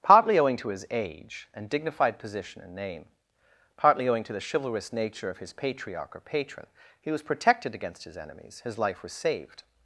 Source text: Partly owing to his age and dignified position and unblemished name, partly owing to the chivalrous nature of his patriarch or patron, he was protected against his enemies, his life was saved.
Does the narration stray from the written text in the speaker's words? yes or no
yes